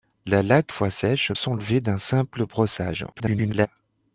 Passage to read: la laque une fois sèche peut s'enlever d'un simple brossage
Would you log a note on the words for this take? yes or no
yes